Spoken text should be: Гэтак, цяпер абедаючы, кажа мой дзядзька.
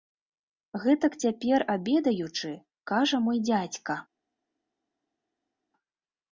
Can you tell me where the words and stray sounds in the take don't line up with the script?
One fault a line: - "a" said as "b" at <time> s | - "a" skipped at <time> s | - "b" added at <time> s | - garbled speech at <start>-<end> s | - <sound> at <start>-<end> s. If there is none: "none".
none